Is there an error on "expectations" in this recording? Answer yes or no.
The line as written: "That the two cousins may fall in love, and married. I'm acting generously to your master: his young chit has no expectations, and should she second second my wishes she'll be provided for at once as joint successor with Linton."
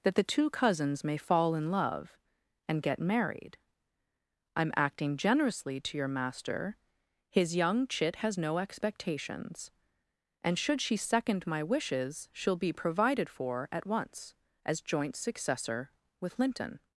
no